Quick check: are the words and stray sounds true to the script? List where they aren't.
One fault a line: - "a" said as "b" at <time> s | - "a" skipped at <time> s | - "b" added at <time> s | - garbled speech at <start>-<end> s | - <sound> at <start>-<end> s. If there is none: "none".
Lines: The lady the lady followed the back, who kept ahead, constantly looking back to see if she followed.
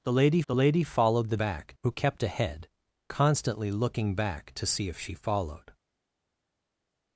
none